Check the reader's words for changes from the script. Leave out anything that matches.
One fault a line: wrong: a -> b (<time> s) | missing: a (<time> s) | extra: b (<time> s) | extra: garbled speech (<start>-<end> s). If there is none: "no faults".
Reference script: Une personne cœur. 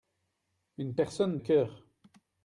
no faults